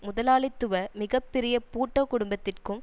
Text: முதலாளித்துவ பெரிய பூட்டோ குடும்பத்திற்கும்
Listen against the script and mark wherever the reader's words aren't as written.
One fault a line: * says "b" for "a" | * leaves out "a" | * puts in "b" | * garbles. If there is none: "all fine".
* puts in "மிக"